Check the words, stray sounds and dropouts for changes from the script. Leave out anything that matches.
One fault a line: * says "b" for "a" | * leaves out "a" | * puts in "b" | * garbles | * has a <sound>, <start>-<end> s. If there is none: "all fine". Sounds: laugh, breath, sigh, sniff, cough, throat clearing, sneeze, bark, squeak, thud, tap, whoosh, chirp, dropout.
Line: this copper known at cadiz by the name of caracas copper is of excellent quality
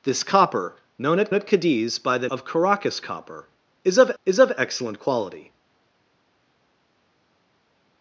* puts in "at"
* leaves out "name"
* puts in "is of"